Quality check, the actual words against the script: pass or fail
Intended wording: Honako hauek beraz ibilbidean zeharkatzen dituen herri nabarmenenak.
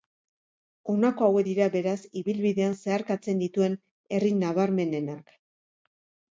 fail